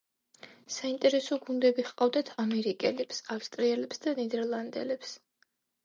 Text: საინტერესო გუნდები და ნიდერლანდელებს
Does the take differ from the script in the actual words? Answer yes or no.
yes